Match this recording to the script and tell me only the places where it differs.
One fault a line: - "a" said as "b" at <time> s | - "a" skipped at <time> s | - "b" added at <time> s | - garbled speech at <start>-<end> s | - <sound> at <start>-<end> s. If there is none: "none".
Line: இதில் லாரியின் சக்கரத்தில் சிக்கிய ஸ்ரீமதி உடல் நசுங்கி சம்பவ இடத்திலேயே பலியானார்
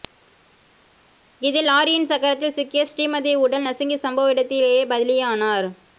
none